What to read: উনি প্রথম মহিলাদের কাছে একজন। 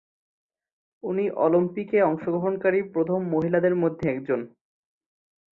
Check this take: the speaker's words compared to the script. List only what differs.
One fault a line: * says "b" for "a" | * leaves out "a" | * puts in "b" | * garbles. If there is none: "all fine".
* puts in "অলিম্পিকে অংশগ্রহণকারী"
* says "মধ্যে" for "কাছে"